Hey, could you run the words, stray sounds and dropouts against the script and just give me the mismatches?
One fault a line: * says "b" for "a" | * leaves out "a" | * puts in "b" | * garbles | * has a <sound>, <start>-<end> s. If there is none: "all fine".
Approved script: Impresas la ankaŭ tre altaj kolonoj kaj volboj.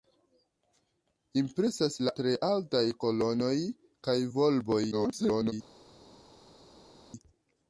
* leaves out "ankaŭ"
* garbles